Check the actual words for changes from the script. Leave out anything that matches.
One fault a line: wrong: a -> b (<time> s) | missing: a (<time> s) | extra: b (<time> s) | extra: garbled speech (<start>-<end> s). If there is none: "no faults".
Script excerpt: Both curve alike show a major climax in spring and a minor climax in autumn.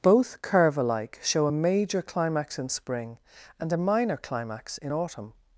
no faults